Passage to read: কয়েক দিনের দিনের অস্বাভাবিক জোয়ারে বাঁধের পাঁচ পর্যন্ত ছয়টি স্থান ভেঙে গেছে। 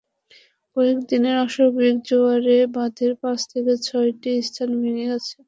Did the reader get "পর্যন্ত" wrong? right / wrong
wrong